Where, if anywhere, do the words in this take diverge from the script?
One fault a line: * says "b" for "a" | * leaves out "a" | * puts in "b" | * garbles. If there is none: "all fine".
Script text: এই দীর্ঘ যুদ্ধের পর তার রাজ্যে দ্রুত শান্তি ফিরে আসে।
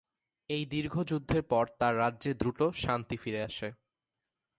all fine